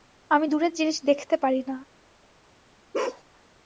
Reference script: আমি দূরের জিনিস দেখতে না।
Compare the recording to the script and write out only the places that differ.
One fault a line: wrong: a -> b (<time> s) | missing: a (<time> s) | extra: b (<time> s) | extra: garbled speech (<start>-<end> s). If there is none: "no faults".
extra: পারি (1.4 s)